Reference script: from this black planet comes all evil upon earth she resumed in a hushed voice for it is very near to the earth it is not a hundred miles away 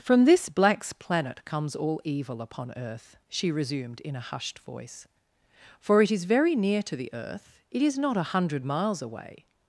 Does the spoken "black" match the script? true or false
false